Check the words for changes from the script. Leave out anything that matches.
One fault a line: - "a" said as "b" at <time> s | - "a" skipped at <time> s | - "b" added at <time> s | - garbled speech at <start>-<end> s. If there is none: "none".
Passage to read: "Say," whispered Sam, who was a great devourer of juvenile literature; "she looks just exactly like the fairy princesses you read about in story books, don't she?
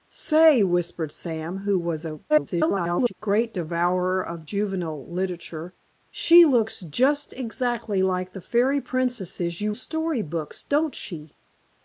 - garbled speech at 2.3-3.1 s
- "read about in" skipped at 9.7 s